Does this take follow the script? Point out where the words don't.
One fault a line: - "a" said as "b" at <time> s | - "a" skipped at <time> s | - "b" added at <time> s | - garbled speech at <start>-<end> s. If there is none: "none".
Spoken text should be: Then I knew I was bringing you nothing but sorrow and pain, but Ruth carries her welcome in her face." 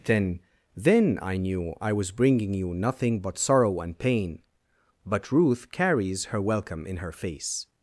- "then" added at 0.8 s